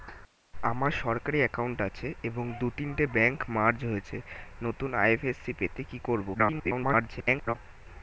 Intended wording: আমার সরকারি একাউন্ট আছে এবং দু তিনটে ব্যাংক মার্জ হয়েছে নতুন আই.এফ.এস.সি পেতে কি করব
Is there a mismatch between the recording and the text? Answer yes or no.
yes